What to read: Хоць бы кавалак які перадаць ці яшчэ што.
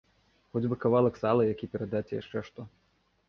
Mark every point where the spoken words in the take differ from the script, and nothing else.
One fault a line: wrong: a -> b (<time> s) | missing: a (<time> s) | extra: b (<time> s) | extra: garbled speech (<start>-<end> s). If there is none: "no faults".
extra: сала (1.2 s)